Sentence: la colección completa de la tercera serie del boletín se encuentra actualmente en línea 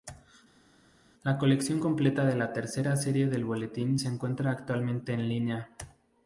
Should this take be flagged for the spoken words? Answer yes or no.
no